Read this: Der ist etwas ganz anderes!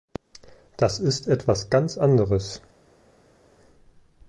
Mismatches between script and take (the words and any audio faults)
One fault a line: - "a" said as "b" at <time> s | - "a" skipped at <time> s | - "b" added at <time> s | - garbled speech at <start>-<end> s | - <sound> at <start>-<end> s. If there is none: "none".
- "Der" said as "Das" at 0.8 s